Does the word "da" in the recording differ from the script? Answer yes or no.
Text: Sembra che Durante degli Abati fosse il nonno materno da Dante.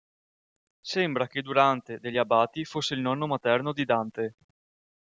yes